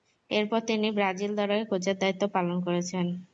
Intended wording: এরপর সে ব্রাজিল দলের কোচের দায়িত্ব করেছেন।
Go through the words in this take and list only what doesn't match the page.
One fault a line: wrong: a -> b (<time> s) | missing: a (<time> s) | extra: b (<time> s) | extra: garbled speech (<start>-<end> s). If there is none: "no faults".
wrong: সে -> তিনি (0.7 s)
extra: পালন (2.4 s)